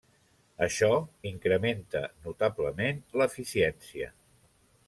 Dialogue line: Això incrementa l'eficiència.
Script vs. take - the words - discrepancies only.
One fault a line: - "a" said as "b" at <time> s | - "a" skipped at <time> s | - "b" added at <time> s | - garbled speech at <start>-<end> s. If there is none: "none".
- "notablement" added at 2.3 s